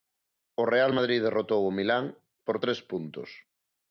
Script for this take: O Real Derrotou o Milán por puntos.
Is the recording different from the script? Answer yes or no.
yes